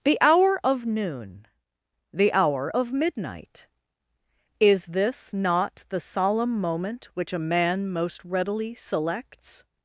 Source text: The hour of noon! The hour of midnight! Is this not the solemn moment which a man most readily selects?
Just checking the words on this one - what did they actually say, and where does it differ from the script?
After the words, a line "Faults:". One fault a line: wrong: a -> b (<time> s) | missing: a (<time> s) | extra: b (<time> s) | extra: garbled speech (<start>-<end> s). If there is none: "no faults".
The hour of noon! The hour of midnight! Is this not the solemn moment which a man most readily selects?
Faults:
no faults